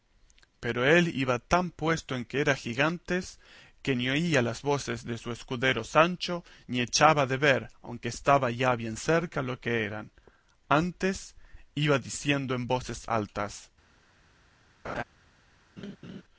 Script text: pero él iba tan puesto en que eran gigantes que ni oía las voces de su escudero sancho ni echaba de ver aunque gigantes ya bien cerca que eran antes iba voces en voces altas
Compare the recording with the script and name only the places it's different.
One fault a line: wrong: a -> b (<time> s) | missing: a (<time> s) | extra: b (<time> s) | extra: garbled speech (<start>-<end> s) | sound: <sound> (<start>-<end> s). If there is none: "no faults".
wrong: gigantes -> estaba (8.1 s)
extra: lo (9.4 s)
wrong: voces -> diciendo (12.0 s)
sound: laugh (14.8-15.0 s)
sound: laugh (15.8-16.2 s)